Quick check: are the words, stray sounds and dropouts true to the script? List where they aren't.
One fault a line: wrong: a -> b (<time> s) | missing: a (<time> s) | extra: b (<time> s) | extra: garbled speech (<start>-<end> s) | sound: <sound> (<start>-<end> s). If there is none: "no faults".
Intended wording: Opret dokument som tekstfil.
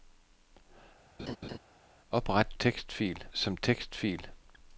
sound: laugh (1.2-1.6 s)
wrong: dokument -> tekstfil (2.5 s)